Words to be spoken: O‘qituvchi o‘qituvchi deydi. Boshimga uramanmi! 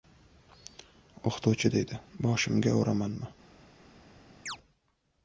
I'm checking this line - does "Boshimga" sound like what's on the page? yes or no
yes